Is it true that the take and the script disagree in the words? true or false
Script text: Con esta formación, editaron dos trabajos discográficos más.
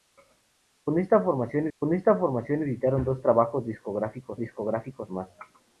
true